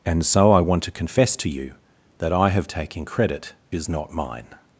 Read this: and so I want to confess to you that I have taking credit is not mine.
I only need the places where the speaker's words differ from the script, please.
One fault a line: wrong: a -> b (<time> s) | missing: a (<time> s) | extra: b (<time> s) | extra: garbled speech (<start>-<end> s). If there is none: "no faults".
no faults